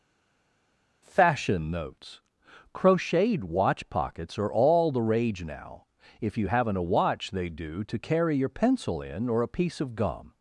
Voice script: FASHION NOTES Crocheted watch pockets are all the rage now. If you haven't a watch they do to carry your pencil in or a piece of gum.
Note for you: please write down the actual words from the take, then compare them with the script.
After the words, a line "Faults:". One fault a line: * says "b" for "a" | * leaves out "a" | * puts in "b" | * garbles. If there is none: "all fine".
FASHION NOTES Crocheted watch pockets are all the rage now. If you haven't a watch they do to carry your pencil in or a piece of gum.
Faults:
all fine